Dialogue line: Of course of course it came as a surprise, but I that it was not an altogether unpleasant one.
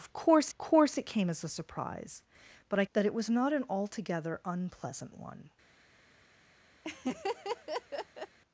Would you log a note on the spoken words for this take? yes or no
no